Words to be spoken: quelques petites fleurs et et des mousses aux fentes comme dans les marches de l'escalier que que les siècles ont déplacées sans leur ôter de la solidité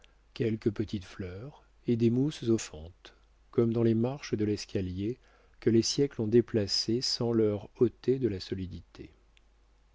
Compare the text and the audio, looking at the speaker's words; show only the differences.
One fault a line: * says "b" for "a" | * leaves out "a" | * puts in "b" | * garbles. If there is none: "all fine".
* leaves out "et"
* leaves out "que"